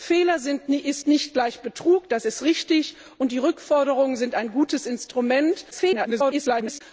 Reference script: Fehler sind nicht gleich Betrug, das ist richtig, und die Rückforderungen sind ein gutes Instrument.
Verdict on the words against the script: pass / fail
fail